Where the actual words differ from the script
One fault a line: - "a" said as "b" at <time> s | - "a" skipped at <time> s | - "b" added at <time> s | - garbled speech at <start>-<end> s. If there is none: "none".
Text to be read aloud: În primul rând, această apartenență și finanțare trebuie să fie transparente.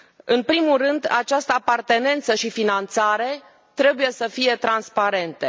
none